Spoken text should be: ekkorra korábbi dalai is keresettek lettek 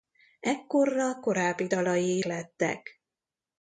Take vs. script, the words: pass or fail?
fail